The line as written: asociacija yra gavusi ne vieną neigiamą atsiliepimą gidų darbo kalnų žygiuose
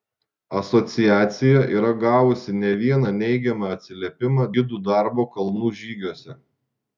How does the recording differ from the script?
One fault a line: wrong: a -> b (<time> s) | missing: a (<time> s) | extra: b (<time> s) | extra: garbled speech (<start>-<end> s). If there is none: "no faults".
no faults